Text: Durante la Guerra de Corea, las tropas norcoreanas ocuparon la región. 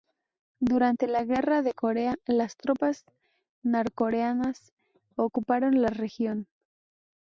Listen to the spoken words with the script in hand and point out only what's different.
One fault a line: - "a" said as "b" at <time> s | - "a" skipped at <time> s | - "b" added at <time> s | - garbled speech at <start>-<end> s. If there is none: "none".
none